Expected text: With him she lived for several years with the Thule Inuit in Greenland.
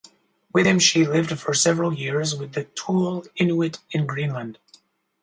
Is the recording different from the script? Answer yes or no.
no